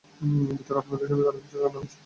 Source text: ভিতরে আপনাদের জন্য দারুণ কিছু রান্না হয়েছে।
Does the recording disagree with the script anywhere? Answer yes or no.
no